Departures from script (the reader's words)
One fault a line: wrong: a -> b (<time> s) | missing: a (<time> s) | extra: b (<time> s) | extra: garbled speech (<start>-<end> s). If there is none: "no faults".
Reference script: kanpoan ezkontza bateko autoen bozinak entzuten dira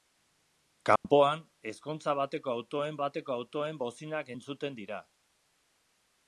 extra: bateko autoen (3.0 s)